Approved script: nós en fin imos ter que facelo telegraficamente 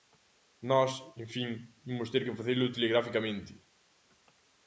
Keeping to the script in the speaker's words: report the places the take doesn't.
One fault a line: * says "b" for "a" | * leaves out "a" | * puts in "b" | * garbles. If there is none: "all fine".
all fine